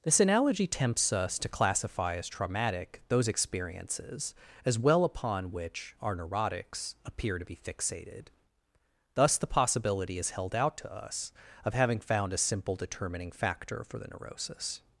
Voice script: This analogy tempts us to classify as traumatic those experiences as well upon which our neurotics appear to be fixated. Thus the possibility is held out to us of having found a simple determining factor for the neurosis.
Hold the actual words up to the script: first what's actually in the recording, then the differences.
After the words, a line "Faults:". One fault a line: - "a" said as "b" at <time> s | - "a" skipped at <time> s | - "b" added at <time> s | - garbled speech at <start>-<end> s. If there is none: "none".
This analogy tempts us to classify as traumatic those experiences as well upon which our neurotics appear to be fixated. Thus the possibility is held out to us of having found a simple determining factor for the neurosis.
Faults:
none